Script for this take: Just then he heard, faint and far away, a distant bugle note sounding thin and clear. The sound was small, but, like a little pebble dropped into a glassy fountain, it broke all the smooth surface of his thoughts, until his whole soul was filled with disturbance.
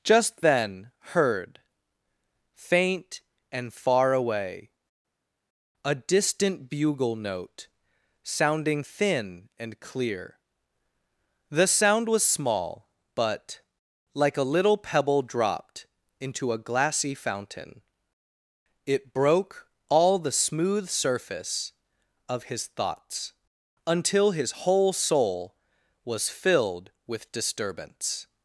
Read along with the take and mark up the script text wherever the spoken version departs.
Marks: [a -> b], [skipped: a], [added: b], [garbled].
Just then [skipped: he] heard, faint and far away, a distant bugle note sounding thin and clear. The sound was small, but, like a little pebble dropped into a glassy fountain, it broke all the smooth surface of his thoughts, until his whole soul was filled with disturbance.